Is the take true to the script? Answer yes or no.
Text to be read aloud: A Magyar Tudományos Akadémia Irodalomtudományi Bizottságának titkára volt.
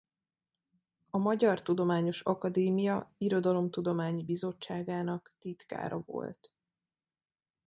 yes